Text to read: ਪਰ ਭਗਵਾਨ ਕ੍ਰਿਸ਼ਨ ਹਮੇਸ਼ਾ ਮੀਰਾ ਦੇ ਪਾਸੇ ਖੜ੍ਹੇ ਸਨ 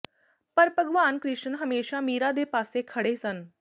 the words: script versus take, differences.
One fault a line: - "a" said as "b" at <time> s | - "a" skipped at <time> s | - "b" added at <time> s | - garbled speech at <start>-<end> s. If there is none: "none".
none